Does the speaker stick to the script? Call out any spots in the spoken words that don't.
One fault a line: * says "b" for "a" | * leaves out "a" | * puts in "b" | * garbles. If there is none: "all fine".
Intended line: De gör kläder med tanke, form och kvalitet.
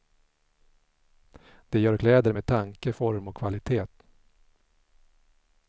all fine